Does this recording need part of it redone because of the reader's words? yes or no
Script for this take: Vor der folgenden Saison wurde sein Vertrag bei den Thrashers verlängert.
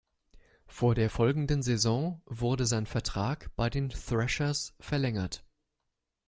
no